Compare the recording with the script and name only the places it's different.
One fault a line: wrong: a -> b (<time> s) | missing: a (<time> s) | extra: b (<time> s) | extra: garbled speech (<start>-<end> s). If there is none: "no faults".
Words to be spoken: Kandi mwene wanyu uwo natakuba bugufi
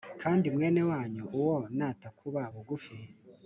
no faults